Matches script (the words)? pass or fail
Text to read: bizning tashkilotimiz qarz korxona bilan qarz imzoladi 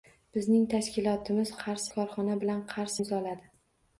pass